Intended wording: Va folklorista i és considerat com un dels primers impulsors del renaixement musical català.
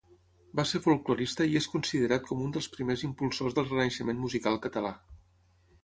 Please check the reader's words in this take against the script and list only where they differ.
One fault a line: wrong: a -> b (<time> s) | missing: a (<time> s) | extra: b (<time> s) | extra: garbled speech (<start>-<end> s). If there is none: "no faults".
extra: ser (0.7 s)